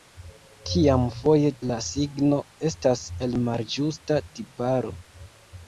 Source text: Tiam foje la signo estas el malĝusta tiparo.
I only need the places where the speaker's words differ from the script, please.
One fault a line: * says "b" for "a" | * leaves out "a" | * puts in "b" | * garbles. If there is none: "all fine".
all fine